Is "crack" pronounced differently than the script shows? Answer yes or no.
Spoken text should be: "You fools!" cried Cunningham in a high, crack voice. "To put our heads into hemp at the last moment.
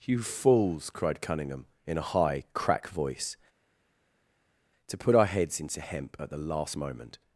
no